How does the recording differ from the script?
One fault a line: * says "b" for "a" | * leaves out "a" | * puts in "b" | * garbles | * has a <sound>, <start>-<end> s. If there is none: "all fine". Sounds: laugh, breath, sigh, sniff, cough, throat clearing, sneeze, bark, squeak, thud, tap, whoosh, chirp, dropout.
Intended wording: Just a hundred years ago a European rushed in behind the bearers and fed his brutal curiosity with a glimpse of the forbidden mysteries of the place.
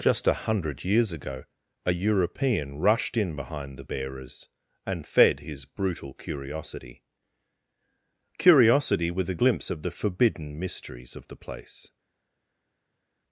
* puts in "curiosity"